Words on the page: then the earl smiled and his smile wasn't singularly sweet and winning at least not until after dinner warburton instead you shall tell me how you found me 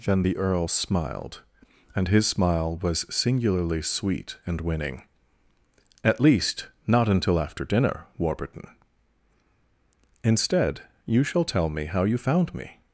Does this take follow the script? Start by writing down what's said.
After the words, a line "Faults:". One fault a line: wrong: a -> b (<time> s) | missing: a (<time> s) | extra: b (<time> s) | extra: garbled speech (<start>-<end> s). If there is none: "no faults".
then the earl smiled and his smile was singularly sweet and winning at least not until after dinner warburton instead you shall tell me how you found me
Faults:
wrong: wasn't -> was (2.8 s)